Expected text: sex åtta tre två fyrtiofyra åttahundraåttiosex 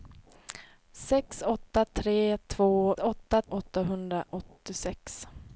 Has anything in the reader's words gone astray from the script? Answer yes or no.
yes